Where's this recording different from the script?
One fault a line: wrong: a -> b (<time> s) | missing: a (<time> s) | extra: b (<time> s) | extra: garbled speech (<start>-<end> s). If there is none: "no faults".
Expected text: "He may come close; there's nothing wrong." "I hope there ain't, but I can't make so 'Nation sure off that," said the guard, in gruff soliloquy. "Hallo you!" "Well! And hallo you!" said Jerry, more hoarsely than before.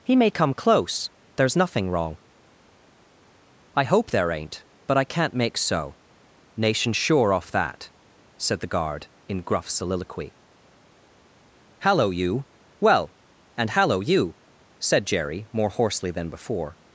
no faults